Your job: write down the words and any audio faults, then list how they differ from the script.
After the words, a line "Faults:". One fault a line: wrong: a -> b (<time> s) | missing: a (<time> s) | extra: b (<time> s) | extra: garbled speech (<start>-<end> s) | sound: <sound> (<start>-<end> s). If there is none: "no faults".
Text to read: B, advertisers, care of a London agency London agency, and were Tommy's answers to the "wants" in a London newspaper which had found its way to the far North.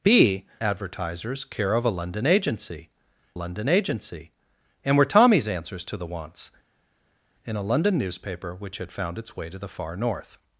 B, advertisers, care of a London agency London agency, and were Tommy's answers to the "wants" in a London newspaper which had found its way to the far North.
Faults:
no faults